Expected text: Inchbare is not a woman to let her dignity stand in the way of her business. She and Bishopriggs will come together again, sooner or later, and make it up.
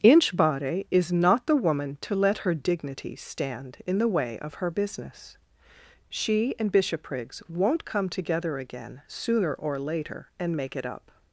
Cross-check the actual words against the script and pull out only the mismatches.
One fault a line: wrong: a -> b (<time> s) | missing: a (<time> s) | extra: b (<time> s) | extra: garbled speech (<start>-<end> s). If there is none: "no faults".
wrong: a -> the (1.4 s)
wrong: will -> won't (7.5 s)